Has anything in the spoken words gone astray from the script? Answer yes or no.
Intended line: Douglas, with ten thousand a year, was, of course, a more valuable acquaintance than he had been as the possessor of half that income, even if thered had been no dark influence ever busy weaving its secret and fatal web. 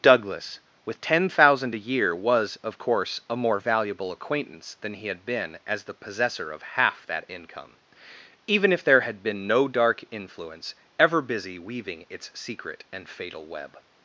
yes